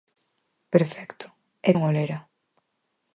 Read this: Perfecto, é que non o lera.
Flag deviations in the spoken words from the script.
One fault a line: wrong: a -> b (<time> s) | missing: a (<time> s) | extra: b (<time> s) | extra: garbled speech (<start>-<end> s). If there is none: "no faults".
missing: que (1.7 s)